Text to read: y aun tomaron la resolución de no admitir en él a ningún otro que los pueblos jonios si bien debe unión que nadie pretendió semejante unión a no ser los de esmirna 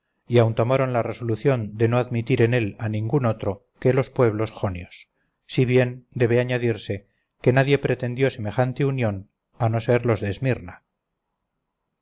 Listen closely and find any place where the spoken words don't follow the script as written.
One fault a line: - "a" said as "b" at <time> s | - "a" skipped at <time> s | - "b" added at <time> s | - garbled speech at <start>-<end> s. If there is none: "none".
- "unión" said as "añadirse" at 6.4 s